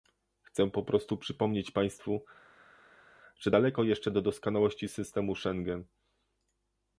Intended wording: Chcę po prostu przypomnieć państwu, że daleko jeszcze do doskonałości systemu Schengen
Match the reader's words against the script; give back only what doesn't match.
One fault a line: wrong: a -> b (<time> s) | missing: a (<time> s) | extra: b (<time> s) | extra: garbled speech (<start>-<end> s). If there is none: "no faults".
no faults